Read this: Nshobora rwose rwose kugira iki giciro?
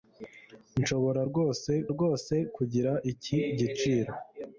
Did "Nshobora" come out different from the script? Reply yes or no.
no